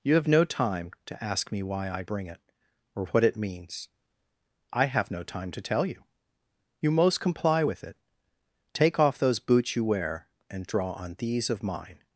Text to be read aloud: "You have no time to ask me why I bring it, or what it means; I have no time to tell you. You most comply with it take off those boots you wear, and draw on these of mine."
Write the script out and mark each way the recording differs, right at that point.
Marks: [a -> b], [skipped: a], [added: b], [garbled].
"You have no time to ask me why I bring it, or what it means; I have no time to tell you. You most comply with it take off those boots you wear, and draw on these of mine."